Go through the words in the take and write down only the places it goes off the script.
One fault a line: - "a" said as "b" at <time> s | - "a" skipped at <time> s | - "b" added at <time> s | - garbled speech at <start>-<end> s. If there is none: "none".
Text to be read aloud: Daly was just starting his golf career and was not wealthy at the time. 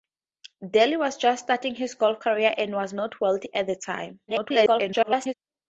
- garbled speech at 4.3-5.3 s